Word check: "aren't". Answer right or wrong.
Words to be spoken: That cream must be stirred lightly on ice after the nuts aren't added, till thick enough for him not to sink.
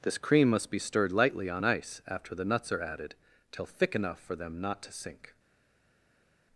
wrong